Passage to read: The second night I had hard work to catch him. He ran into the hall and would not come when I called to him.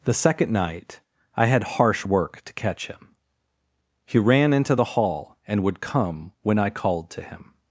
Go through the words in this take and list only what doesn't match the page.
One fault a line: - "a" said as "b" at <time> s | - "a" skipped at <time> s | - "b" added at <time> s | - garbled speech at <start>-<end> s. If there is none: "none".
- "hard" said as "harsh" at 1.6 s
- "not" skipped at 5.8 s